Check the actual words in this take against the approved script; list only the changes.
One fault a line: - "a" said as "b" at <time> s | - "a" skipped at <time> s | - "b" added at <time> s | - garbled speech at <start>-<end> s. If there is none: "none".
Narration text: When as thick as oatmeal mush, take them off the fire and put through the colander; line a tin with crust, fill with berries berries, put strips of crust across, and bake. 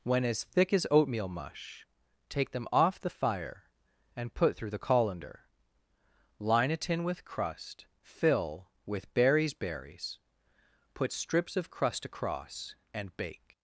none